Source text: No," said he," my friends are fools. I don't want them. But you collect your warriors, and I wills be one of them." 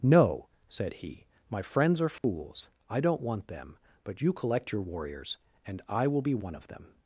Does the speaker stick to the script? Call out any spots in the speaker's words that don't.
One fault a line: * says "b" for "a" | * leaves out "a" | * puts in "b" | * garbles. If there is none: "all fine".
* says "will" for "wills"